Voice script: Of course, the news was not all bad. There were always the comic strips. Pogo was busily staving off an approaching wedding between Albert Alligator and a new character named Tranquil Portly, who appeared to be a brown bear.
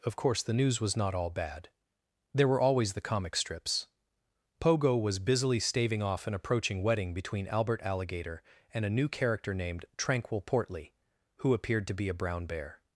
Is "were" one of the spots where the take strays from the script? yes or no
no